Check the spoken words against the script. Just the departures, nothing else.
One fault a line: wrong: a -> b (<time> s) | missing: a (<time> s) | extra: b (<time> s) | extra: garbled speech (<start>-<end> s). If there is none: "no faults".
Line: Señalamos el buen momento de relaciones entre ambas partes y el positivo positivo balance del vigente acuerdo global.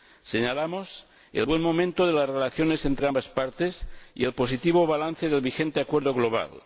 extra: las (2.1 s)
missing: positivo (4.9 s)